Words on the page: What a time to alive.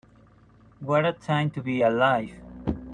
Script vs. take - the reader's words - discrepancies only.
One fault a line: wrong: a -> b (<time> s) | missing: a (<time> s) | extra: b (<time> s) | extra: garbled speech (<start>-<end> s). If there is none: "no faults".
extra: be (1.6 s)